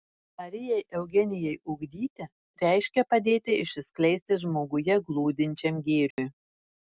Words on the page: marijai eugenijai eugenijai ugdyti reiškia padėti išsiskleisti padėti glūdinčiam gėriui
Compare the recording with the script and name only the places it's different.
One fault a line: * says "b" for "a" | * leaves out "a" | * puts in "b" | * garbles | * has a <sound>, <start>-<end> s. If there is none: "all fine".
* leaves out "eugenijai"
* says "žmoguje" for "padėti"
* has a dropout, 6.1-6.2 s